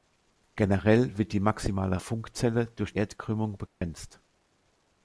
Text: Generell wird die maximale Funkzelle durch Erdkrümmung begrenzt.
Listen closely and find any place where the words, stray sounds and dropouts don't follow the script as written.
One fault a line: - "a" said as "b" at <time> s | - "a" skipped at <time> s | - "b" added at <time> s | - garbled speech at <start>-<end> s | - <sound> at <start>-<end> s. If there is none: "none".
- dropout at 3.7-3.8 s